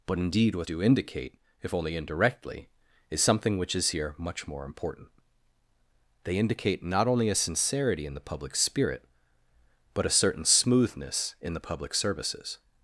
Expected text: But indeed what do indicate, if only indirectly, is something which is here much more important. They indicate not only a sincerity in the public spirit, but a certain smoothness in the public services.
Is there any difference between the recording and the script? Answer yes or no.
no